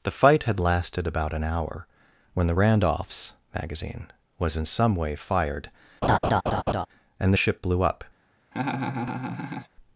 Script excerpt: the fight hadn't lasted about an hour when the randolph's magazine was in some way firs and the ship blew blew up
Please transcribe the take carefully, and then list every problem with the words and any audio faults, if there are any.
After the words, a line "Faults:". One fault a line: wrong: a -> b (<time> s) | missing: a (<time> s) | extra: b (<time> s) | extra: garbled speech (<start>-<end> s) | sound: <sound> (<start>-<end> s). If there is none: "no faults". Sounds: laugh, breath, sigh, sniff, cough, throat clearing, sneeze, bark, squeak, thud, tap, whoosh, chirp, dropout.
the fight had lasted about an hour when the randolph's magazine was in some way fired and the ship blew up
Faults:
wrong: hadn't -> had (0.4 s)
wrong: firs -> fired (5.1 s)
sound: laugh (6.0-6.9 s)
missing: blew (7.8 s)
sound: laugh (8.5-9.7 s)